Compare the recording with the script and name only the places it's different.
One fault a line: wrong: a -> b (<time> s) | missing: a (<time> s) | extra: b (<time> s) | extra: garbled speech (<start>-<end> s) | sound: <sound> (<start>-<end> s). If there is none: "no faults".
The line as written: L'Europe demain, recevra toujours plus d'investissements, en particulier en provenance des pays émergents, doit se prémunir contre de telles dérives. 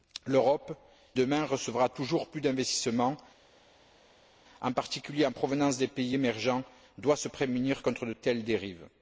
no faults